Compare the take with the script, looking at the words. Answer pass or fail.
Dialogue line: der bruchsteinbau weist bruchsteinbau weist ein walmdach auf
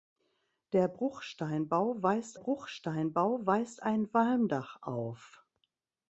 pass